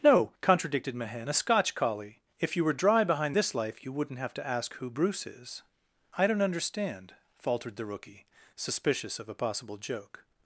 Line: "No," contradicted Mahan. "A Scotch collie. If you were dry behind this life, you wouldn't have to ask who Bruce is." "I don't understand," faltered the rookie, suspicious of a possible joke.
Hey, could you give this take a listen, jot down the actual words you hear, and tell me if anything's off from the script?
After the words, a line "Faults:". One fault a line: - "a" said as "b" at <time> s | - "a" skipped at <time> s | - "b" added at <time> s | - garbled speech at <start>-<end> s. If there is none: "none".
"No," contradicted Mahan. "A Scotch collie. If you were dry behind this life, you wouldn't have to ask who Bruce is." "I don't understand," faltered the rookie, suspicious of a possible joke.
Faults:
none